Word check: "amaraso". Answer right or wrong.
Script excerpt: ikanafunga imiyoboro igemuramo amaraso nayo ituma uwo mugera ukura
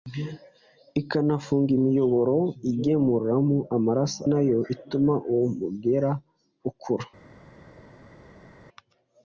right